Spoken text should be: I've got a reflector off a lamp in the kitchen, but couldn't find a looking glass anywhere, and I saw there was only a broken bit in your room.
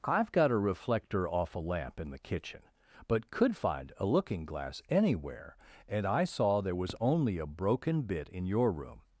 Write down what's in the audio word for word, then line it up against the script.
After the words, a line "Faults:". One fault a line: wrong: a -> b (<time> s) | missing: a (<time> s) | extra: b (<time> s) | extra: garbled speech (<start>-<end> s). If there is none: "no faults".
I've got a reflector off a lamp in the kitchen, but could find a looking glass anywhere, and I saw there was only a broken bit in your room.
Faults:
wrong: couldn't -> could (3.3 s)